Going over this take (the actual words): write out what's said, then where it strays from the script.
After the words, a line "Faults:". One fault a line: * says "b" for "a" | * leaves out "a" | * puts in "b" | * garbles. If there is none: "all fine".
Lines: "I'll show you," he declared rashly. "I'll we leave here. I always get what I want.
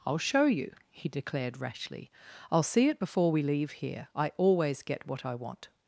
"I'll show you," he declared rashly. "I'll see it before we leave here. I always get what I want.
Faults:
* puts in "see it before"